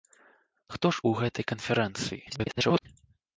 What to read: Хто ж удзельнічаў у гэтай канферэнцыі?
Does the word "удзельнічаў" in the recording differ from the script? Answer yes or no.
yes